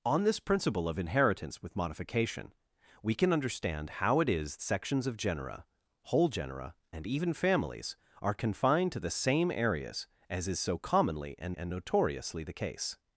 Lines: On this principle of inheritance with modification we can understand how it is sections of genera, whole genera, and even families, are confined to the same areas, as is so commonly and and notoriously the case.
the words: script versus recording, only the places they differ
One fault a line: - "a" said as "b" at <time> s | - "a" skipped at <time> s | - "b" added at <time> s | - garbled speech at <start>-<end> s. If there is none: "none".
none